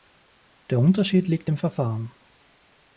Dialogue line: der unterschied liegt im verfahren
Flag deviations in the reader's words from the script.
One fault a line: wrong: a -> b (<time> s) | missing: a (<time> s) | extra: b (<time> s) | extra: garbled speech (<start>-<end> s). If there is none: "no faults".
no faults